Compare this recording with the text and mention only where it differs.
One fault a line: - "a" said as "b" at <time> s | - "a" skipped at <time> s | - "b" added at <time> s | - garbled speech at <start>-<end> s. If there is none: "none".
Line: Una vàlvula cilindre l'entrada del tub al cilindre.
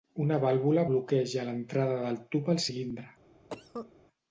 - "cilindre" said as "bloqueja" at 0.9 s